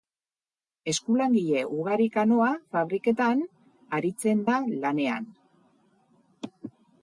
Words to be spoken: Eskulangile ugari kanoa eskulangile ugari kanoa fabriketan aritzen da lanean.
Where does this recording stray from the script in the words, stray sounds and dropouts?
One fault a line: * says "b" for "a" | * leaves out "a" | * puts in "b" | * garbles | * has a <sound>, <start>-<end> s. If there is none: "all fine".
* leaves out "eskulangile ugari kanoa"